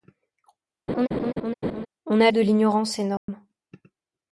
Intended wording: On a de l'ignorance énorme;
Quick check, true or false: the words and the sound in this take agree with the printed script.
false